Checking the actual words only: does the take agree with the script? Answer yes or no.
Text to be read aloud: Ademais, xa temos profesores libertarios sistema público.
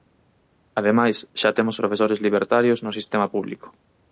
no